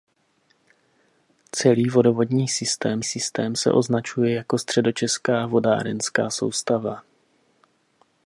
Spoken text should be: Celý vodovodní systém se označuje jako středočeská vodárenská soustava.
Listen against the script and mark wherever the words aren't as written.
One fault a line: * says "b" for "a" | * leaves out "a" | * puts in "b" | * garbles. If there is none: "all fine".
* puts in "systém"